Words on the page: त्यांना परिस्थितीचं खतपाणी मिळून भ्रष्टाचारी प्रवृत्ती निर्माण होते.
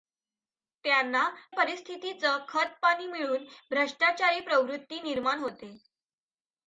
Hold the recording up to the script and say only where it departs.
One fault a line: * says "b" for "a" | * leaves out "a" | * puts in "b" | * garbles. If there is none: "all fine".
all fine